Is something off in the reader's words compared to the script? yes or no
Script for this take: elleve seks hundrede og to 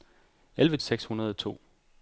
no